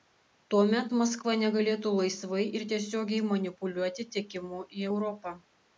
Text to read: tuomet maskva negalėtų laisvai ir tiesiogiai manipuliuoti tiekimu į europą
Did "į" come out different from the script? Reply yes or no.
no